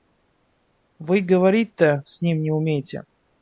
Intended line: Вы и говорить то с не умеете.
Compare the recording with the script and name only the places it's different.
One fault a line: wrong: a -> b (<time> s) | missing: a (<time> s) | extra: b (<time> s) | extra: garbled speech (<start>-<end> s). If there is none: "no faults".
extra: ним (2.2 s)